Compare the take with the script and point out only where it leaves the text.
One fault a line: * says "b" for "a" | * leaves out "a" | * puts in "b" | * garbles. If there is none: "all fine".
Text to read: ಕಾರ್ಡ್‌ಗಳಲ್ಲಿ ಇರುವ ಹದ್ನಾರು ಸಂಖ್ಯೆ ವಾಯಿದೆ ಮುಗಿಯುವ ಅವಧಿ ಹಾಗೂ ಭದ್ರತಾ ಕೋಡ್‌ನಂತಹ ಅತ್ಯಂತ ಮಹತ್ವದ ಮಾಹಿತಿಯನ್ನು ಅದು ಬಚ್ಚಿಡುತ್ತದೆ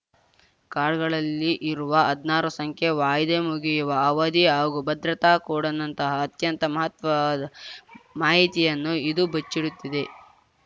* says "ಇದು" for "ಅದು"